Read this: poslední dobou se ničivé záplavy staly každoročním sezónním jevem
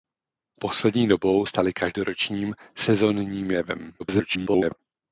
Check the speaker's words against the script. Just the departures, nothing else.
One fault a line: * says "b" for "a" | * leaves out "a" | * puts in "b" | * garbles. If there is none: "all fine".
* leaves out "se ničivé záplavy"
* garbles